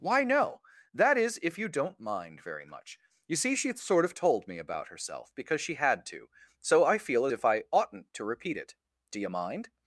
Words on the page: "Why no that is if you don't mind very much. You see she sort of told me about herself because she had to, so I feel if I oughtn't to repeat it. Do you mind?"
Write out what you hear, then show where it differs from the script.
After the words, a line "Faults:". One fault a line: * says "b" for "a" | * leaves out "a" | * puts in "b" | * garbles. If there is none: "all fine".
"Why no that is if you don't mind very much. You see she sort of told me about herself because she had to, so I feel if I oughtn't to repeat it. Do you mind?"
Faults:
all fine